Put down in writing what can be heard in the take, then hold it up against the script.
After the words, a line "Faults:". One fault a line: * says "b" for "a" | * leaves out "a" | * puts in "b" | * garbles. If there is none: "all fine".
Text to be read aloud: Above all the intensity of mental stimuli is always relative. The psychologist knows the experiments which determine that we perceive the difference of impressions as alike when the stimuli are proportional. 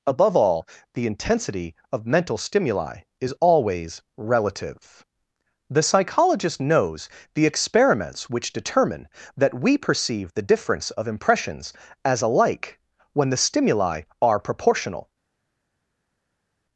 Above all the intensity of mental stimuli is always relative. The psychologist knows the experiments which determine that we perceive the difference of impressions as alike when the stimuli are proportional.
Faults:
all fine